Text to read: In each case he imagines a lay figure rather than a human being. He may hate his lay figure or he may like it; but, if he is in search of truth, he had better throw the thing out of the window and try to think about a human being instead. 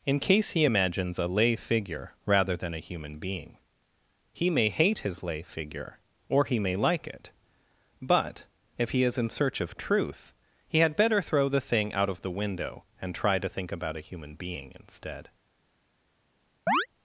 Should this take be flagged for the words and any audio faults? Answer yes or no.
yes